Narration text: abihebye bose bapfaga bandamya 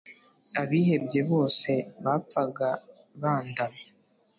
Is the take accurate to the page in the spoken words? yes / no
yes